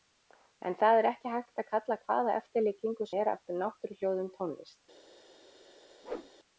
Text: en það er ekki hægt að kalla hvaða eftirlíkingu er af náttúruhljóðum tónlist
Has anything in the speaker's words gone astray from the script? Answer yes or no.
no